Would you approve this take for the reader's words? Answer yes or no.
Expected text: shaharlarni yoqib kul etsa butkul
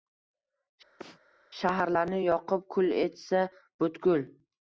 yes